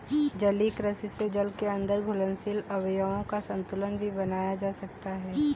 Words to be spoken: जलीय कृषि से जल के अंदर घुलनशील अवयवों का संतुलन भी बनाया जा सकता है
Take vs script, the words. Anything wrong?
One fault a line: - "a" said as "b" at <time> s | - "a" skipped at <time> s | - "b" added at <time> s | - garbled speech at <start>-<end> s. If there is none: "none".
none